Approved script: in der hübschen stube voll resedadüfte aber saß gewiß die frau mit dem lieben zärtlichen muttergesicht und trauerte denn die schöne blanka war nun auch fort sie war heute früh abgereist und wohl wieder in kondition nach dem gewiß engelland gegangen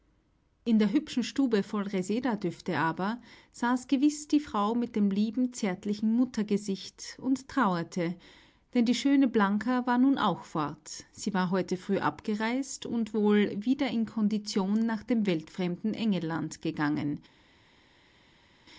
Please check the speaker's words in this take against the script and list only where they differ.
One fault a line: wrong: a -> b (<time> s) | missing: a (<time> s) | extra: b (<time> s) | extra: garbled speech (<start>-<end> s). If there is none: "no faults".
wrong: gewiß -> weltfremden (15.3 s)